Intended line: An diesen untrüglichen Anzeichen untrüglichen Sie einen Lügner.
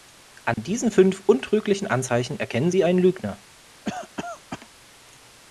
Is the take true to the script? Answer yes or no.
no